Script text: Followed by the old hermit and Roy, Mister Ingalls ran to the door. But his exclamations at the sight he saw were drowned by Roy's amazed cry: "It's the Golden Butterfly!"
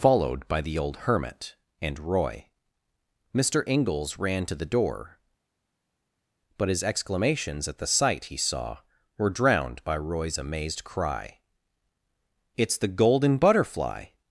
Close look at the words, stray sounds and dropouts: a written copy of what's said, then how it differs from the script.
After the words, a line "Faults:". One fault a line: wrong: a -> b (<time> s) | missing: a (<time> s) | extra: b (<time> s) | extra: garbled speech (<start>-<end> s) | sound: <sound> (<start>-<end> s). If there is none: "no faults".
Followed by the old hermit and Roy, Mister Ingalls ran to the door. But his exclamations at the sight he saw were drowned by Roy's amazed cry: "It's the Golden Butterfly!"
Faults:
no faults